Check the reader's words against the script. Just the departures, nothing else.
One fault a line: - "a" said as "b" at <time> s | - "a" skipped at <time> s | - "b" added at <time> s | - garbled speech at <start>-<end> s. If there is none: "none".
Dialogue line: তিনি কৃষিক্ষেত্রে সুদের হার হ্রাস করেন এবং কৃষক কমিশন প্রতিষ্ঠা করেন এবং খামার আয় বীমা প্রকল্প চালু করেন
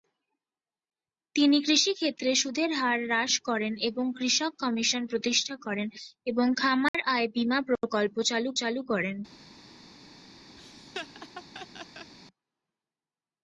- "চালু" added at 8.6 s